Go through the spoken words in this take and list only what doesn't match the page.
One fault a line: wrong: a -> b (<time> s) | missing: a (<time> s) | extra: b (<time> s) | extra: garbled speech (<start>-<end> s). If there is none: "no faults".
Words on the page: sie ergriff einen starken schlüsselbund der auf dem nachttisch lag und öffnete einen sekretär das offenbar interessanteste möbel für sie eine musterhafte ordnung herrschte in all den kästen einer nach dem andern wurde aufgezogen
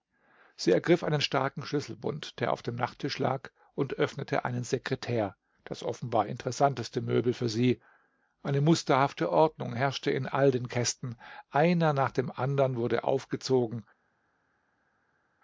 no faults